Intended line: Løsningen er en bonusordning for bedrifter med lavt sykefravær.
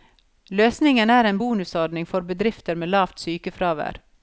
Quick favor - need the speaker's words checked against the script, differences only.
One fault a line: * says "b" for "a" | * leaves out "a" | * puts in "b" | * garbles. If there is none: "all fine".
all fine